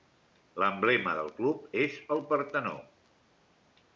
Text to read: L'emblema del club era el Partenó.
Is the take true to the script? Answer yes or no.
no